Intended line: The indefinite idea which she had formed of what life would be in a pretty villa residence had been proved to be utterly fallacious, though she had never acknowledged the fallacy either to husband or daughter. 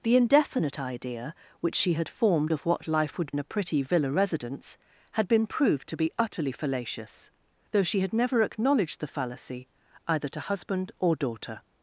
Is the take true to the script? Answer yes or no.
no